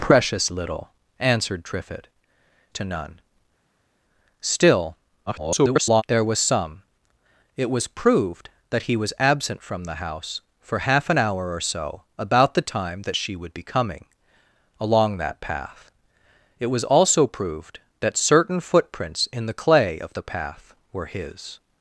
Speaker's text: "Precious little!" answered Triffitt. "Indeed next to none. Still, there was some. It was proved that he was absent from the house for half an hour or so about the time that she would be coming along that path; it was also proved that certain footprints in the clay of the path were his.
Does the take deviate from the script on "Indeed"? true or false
true